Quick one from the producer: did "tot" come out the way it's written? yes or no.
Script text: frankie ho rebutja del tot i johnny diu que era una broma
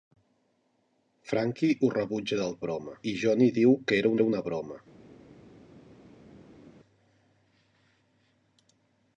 no